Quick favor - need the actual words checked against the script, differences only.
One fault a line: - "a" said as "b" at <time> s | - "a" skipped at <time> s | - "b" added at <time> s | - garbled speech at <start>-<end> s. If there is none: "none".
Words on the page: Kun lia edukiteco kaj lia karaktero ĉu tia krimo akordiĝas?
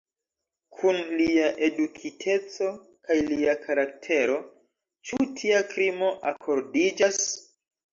none